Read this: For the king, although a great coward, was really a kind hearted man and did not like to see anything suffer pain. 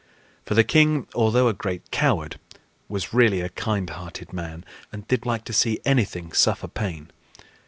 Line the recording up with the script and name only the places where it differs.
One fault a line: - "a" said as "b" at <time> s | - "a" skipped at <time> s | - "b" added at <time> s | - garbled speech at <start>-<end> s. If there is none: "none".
- "not" skipped at 5.3 s